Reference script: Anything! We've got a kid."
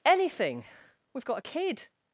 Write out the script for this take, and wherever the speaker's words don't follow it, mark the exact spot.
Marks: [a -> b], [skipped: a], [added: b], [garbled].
Anything! We've got a kid."